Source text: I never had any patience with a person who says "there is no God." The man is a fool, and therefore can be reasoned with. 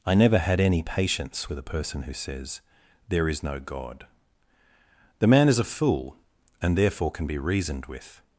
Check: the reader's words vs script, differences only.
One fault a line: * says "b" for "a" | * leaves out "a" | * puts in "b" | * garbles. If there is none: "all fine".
all fine